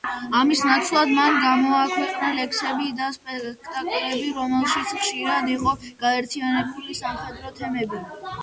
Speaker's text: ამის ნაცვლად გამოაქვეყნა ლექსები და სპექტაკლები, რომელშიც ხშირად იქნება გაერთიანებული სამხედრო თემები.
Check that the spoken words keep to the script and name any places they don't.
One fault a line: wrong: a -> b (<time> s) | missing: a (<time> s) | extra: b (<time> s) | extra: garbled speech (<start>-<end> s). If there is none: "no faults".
extra: მან (1.2 s)
wrong: იქნება -> იყო (5.6 s)